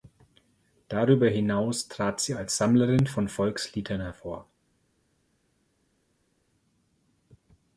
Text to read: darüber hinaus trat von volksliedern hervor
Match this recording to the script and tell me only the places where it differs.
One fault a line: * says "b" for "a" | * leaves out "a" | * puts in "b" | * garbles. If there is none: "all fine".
* puts in "sie als sammlerin"